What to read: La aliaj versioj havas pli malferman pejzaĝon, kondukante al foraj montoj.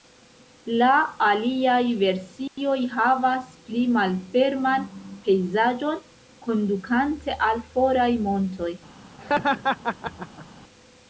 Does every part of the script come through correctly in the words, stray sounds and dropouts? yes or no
no